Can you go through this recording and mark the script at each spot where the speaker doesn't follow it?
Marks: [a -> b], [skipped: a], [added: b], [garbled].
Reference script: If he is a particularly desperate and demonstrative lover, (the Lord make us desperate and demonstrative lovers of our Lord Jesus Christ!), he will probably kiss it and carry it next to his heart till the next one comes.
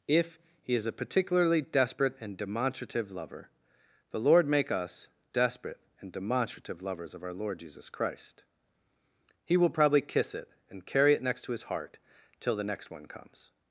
If he is a particularly desperate and demonstrative lover, (the Lord make us desperate and demonstrative lovers of our Lord Jesus Christ!), he will probably kiss it and carry it next to his heart till the next one comes.